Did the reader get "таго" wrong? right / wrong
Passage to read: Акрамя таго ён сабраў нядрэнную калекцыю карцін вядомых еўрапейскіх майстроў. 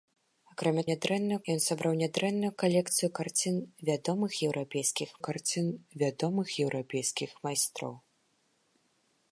wrong